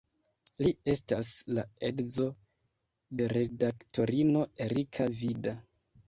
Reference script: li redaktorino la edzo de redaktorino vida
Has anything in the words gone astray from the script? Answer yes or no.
yes